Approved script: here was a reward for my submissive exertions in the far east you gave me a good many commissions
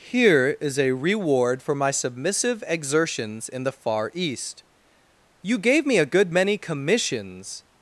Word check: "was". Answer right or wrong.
wrong